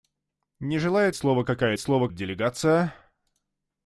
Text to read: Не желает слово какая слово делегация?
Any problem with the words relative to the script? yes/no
no